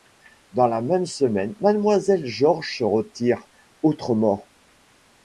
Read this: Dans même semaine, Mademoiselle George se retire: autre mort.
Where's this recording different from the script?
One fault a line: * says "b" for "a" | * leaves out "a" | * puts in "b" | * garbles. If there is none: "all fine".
* puts in "la"